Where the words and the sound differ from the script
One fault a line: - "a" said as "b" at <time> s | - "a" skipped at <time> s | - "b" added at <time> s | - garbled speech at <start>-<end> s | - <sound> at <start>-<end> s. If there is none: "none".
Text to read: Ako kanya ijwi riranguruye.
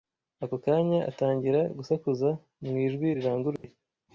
- "atangira gusakuza mu" added at 1.1 s
- dropout at 3.6-3.6 s